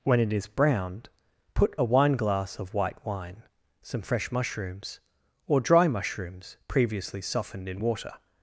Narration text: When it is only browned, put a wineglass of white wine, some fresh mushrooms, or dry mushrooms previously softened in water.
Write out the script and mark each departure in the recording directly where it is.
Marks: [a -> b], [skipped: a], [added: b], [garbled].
When it is [skipped: only] browned, put a wineglass of white wine, some fresh mushrooms, or dry mushrooms previously softened in water.